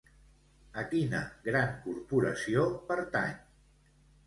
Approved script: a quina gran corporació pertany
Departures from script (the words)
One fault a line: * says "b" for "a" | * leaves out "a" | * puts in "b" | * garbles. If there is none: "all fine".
all fine